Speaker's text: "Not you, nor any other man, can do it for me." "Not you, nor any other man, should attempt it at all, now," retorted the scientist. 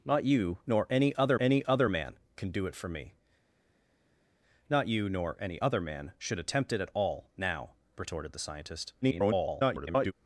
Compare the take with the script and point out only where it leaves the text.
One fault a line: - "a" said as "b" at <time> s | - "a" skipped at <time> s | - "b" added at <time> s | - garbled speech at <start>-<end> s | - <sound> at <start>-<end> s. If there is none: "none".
- "any other" added at 1.4 s
- garbled speech at 9.0-10.1 s